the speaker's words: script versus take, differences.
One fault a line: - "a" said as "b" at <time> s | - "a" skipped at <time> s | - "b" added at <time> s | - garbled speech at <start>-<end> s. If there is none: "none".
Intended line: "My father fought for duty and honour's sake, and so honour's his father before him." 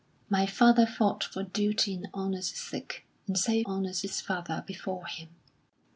none